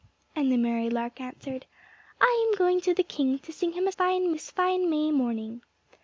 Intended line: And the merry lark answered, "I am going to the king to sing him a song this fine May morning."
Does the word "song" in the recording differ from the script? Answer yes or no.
yes